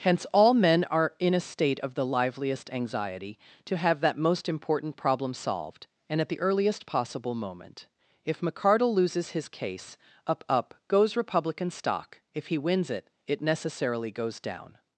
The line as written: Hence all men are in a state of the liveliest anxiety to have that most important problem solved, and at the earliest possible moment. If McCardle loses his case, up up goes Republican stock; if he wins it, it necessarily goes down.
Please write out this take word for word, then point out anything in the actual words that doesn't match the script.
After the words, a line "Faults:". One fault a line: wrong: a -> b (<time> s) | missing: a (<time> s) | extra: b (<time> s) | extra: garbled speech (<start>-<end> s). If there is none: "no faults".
Hence all men are in a state of the liveliest anxiety to have that most important problem solved, and at the earliest possible moment. If McCardle loses his case, up up goes Republican stock; if he wins it, it necessarily goes down.
Faults:
no faults